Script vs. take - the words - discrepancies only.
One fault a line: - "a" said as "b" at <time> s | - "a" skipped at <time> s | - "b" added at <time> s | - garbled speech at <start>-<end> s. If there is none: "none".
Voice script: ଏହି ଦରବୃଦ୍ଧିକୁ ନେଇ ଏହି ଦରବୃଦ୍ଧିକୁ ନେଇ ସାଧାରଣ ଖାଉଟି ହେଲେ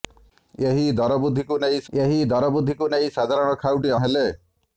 none